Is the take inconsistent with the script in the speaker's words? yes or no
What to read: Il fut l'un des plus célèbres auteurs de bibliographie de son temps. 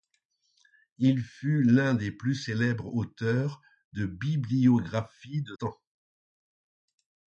yes